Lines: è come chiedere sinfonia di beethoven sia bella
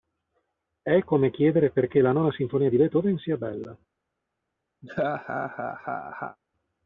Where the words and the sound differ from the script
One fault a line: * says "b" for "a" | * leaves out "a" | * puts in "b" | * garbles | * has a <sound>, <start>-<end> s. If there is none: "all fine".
* puts in "perché la nona"
* has a laugh, 4.8-6.4 s